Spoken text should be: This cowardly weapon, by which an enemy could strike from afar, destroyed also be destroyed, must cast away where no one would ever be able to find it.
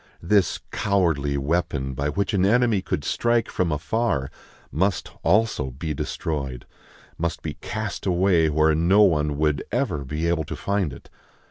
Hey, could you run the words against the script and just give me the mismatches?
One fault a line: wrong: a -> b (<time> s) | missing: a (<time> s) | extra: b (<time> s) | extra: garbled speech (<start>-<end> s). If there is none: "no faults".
wrong: destroyed -> must (4.7 s)
extra: be (7.4 s)